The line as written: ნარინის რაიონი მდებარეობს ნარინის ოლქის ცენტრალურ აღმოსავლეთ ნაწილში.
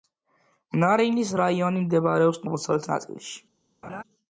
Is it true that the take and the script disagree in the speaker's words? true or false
true